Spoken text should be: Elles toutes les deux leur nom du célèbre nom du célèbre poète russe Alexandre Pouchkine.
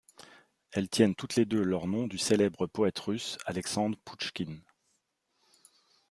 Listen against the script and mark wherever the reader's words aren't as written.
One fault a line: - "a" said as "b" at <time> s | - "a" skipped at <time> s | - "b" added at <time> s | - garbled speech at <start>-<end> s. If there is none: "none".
- "tiennent" added at 0.9 s
- "nom du célèbre" skipped at 2.7 s